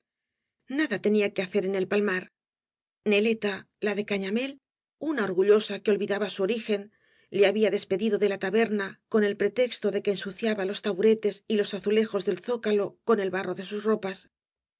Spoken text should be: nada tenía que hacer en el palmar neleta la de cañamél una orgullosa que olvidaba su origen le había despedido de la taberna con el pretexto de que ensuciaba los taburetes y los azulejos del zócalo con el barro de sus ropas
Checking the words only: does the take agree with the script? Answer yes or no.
yes